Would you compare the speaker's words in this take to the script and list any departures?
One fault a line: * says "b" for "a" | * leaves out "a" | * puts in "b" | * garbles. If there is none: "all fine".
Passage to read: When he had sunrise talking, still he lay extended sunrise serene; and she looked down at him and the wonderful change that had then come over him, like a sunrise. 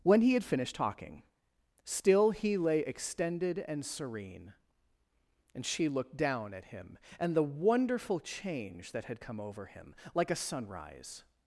* says "finished" for "sunrise"
* says "and" for "sunrise"
* leaves out "then"